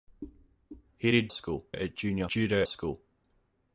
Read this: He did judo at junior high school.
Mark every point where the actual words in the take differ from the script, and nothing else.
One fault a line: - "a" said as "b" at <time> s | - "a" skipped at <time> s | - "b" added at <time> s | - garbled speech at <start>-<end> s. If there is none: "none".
- "judo" said as "school" at 1.3 s
- "high" said as "judo" at 2.3 s